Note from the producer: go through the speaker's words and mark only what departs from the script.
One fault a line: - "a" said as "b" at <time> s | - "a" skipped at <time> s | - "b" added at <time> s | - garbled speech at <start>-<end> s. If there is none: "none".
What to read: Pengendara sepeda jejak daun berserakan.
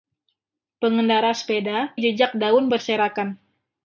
none